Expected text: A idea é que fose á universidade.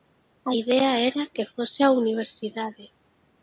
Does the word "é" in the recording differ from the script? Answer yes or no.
yes